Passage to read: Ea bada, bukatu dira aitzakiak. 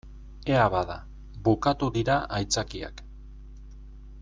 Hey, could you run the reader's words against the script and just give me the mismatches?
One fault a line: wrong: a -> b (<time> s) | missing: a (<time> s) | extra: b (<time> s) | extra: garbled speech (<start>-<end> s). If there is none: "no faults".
no faults